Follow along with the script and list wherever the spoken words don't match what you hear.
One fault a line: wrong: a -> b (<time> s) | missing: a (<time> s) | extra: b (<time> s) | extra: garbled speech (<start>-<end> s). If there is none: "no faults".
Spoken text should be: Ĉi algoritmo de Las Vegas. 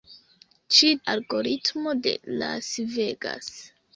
no faults